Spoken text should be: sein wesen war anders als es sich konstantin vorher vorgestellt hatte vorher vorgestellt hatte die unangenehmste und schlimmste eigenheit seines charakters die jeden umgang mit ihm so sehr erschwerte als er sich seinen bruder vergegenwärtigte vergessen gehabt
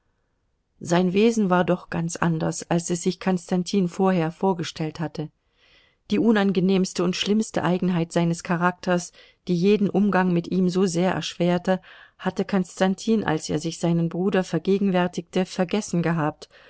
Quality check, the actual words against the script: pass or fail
fail